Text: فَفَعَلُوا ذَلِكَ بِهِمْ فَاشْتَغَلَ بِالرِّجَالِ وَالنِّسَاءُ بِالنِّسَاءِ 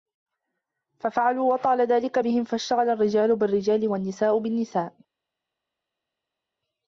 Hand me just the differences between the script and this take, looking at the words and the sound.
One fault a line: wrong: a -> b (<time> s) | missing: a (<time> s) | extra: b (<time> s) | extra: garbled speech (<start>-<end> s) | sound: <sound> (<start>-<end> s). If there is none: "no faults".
extra: وَطَالَ (1.5 s)
extra: الرِّجَالُ (2.9 s)